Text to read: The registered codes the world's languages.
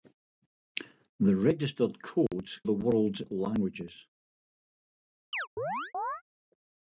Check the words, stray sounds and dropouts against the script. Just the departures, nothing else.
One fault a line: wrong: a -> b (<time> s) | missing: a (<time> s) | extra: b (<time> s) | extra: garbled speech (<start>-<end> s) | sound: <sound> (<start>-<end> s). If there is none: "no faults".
sound: dropout (2.3-2.3 s)
sound: chirp (5.3-6.2 s)